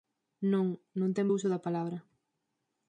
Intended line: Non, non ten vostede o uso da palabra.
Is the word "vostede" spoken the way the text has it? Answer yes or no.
no